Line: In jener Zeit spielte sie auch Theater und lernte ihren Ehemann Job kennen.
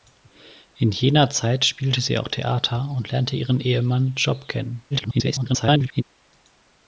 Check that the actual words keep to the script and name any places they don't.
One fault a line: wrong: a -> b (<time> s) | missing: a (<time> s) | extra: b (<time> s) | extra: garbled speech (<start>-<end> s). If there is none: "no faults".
extra: garbled speech (4.9-6.0 s)